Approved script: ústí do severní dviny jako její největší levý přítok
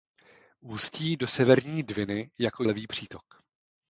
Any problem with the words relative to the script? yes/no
yes